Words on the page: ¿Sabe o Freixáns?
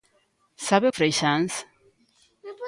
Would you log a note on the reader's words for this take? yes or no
no